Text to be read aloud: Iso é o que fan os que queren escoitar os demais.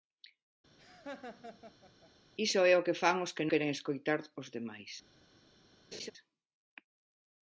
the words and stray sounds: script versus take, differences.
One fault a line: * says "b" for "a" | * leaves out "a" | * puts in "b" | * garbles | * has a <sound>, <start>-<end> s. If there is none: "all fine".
* has a laugh, 0.8-2.1 s
* has a laugh, 5.9-6.1 s